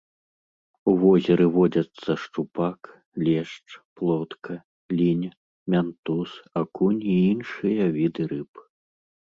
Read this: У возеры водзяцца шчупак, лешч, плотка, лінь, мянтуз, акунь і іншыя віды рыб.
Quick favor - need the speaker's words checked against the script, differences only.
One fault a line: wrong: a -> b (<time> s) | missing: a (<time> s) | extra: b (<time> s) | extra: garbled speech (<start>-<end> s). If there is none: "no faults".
no faults